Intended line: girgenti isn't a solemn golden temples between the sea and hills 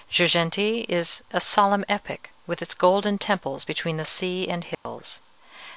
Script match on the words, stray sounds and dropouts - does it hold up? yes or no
no